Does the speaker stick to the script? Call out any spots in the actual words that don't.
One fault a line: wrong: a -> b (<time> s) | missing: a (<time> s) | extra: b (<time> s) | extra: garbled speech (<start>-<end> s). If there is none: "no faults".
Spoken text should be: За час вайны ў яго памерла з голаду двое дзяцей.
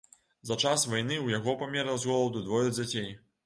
no faults